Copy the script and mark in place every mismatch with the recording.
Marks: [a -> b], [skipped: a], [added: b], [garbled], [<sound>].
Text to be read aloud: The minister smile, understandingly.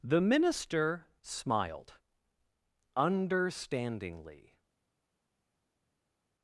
The minister [smile, -> smiled] understandingly.